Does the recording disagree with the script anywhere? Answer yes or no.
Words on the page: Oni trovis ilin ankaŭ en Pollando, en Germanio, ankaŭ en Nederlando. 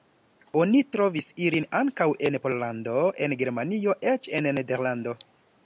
yes